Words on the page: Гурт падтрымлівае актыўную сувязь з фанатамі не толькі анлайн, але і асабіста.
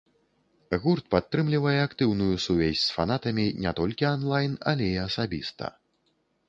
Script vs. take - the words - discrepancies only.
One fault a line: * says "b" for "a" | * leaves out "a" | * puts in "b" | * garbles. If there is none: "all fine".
all fine